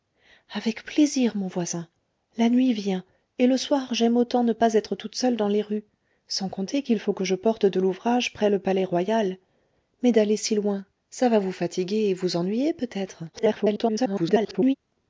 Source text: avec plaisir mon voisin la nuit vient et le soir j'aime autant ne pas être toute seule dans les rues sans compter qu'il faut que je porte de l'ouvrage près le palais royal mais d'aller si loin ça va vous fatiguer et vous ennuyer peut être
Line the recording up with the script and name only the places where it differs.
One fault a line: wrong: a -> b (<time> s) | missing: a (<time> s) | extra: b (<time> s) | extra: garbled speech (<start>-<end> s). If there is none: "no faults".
extra: garbled speech (13.3-14.7 s)